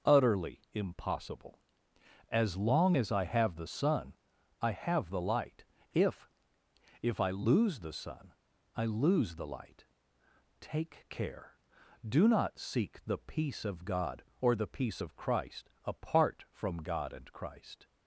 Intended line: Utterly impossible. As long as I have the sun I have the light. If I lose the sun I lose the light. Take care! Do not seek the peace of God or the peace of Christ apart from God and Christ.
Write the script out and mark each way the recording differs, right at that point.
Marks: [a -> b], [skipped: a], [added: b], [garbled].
Utterly impossible. As long as I have the sun I have the light. If [added: If] I lose the sun I lose the light. Take care! Do not seek the peace of God or the peace of Christ apart from God and Christ.